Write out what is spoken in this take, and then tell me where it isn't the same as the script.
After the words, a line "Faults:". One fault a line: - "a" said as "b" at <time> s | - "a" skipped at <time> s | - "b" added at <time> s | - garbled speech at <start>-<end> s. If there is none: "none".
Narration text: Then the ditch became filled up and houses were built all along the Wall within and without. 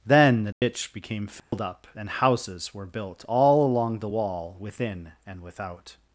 Then the ditch became filled up and houses were built all along the Wall within and without.
Faults:
none